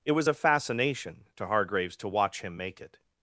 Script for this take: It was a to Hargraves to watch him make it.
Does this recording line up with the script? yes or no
no